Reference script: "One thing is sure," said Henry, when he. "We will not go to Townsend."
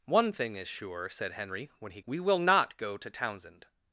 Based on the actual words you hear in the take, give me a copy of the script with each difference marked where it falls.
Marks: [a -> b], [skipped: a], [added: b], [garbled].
"One thing is sure," said Henry, when he. "We will not go to Townsend."